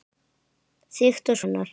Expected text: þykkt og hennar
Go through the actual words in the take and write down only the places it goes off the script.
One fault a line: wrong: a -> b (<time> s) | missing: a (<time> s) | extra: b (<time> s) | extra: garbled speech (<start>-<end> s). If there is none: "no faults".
no faults